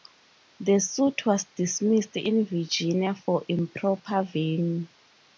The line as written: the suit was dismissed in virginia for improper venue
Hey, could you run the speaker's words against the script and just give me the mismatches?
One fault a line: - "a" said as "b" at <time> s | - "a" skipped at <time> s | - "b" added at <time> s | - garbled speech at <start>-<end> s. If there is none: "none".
none